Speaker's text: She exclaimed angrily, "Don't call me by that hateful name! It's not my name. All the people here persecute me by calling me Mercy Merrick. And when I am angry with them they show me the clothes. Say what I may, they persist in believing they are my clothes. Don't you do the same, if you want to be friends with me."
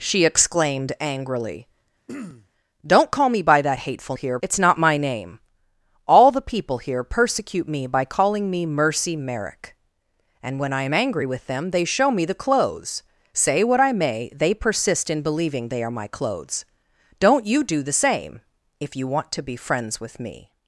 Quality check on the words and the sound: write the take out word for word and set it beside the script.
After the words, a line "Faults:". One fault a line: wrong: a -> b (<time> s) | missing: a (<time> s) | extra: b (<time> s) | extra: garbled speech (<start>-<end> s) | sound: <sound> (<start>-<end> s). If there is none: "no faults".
She exclaimed angrily, "Don't call me by that hateful here! It's not my name. All the people here persecute me by calling me Mercy Merrick. And when I am angry with them they show me the clothes. Say what I may, they persist in believing they are my clothes. Don't you do the same, if you want to be friends with me."
Faults:
sound: throat clearing (2.1-2.5 s)
wrong: name -> here (4.1 s)